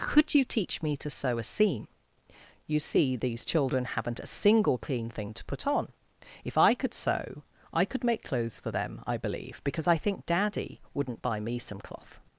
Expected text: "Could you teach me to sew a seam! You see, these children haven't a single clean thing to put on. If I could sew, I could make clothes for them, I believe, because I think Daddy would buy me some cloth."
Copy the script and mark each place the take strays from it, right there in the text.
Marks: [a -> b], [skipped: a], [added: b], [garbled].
"Could you teach me to sew a seam! You see, these children haven't a single clean thing to put on. If I could sew, I could make clothes for them, I believe, because I think Daddy [would -> wouldn't] buy me some cloth."